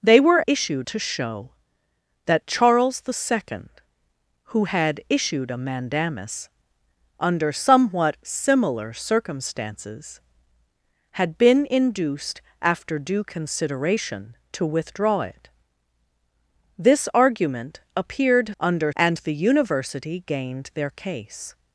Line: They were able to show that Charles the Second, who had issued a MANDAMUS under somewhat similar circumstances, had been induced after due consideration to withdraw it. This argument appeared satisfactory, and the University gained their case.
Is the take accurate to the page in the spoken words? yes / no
no